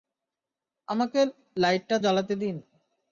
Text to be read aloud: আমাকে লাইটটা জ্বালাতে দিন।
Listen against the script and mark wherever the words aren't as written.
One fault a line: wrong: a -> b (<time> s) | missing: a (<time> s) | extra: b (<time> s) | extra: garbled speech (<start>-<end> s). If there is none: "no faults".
no faults